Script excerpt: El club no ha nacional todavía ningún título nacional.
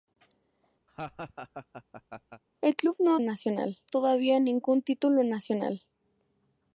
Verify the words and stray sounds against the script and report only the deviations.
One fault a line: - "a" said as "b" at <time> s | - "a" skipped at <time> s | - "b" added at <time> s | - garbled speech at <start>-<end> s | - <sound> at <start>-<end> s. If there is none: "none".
- laugh at 0.9-2.4 s